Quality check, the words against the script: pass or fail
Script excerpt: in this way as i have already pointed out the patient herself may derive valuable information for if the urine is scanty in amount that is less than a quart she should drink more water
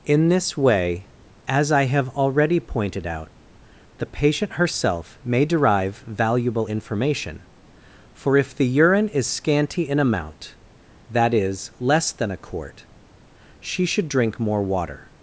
pass